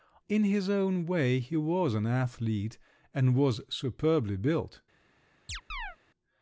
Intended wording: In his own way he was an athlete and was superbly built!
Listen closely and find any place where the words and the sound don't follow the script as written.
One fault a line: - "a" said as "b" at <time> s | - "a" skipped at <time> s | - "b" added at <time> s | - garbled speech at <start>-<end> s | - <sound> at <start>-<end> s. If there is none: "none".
- chirp at 5.5-6.0 s